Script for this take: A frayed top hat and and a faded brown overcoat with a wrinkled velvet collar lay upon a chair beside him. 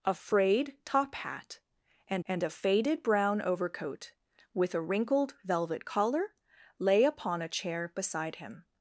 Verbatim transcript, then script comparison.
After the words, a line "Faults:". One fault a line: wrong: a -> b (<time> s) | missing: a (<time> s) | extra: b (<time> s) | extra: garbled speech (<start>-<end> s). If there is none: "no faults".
A frayed top hat and and a faded brown overcoat with a wrinkled velvet collar lay upon a chair beside him.
Faults:
no faults